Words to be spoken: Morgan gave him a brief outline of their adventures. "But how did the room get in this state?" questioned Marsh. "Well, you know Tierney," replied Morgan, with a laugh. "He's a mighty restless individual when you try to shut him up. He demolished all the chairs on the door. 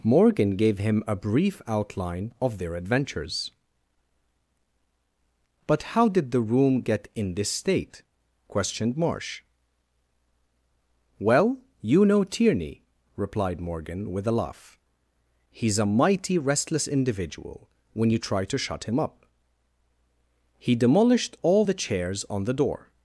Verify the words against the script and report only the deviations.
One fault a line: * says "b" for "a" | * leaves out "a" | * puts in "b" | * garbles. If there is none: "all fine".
all fine